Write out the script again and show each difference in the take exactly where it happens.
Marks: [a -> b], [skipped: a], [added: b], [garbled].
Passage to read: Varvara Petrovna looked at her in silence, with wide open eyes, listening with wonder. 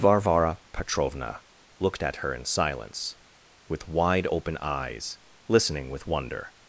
Varvara Petrovna looked at her in silence, with wide open eyes, listening with wonder.